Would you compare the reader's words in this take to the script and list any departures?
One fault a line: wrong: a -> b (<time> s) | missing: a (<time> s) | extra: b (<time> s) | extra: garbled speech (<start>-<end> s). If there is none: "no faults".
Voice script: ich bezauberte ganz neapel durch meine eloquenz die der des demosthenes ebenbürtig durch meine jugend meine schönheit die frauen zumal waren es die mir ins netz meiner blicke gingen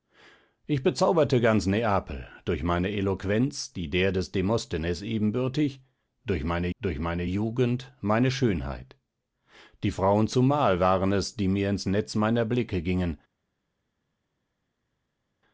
extra: durch meine (6.8 s)